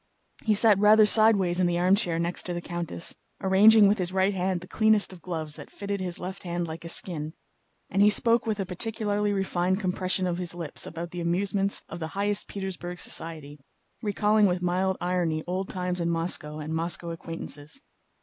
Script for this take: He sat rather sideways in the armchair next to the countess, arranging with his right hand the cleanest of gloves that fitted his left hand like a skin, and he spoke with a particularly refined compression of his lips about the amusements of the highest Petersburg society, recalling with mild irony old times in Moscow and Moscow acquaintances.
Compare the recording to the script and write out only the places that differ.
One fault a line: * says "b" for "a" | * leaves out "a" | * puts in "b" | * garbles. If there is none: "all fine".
all fine